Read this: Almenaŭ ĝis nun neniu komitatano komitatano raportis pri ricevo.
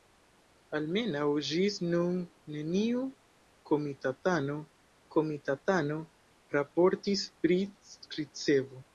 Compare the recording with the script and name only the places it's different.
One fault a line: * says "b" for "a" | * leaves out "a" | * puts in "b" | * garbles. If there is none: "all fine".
all fine